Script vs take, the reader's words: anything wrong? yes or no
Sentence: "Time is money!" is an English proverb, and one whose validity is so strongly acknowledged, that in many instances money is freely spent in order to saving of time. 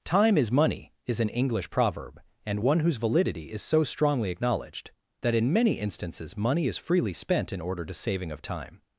no